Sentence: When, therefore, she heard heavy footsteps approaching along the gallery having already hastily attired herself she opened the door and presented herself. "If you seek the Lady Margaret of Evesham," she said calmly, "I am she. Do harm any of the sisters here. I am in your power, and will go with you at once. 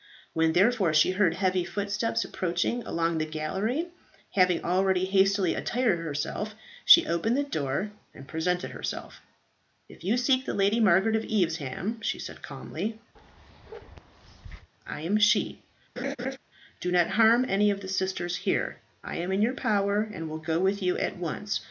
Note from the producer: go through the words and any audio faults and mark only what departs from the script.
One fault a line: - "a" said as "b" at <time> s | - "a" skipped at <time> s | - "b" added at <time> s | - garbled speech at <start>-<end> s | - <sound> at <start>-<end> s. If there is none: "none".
- bark at 13.2-14.7 s
- laugh at 16.0-16.4 s
- "not" added at 16.9 s